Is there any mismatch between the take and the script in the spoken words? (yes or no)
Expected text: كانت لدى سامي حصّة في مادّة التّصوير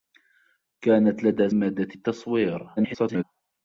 yes